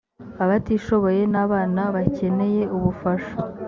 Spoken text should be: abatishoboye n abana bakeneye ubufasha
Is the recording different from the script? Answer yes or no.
no